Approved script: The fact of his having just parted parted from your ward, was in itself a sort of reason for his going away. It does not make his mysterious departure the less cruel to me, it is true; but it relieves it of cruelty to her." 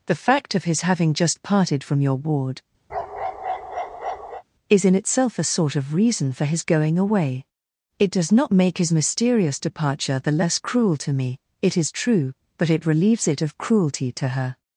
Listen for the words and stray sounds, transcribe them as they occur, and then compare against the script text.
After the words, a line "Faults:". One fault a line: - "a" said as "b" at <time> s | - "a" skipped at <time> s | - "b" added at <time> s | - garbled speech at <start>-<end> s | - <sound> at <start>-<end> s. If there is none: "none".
The fact of his having just parted from your ward, is in itself a sort of reason for his going away. It does not make his mysterious departure the less cruel to me, it is true; but it relieves it of cruelty to her."
Faults:
- "parted" skipped at 1.8 s
- bark at 2.9-4.4 s
- "was" said as "is" at 4.7 s